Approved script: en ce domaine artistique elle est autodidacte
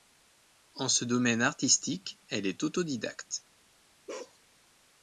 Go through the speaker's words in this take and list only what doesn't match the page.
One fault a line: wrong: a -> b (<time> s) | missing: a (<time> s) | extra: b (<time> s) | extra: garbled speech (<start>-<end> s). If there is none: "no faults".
no faults